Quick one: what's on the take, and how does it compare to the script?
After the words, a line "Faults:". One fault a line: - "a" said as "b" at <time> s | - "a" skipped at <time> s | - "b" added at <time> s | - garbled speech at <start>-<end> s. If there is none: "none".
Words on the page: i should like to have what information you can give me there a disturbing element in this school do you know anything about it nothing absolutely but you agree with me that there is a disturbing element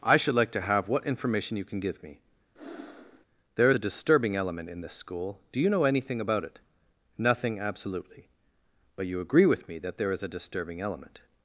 i should like to have what information you can give me there a disturbing element in this school do you know anything about it nothing absolutely but you agree with me that there is a disturbing element
Faults:
none